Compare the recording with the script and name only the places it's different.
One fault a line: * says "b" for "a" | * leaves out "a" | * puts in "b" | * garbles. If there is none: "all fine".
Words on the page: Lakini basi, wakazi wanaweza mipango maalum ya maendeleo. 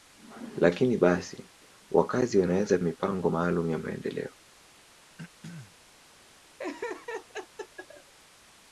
all fine